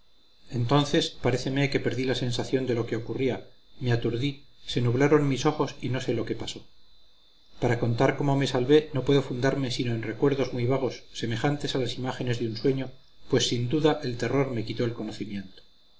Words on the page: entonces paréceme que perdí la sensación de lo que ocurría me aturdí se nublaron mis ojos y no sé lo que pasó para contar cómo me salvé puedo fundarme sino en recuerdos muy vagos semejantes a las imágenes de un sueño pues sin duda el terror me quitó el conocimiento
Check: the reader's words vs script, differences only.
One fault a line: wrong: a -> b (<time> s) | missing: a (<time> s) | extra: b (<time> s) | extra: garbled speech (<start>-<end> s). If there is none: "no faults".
extra: no (8.9 s)